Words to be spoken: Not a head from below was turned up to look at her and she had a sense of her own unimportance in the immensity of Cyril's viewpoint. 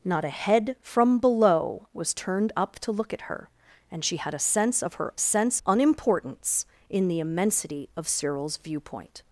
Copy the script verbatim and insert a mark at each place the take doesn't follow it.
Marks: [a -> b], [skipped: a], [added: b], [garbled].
Not a head from below was turned up to look at her and she had a sense of her [own -> sense] unimportance in the immensity of Cyril's viewpoint.